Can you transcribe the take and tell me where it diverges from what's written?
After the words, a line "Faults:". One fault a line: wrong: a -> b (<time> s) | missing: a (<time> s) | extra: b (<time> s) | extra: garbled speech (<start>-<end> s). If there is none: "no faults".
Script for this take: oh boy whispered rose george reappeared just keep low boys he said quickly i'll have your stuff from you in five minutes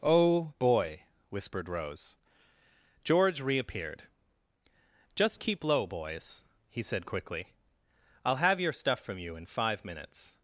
oh boy whispered rose george reappeared just keep low boys he said quickly i'll have your stuff from you in five minutes
Faults:
no faults